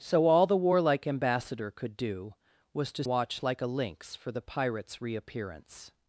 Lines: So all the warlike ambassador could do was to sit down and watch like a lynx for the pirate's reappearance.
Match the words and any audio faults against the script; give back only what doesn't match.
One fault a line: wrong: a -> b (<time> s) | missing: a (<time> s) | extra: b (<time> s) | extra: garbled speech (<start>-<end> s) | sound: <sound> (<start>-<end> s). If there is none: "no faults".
missing: sit down and (3.0 s)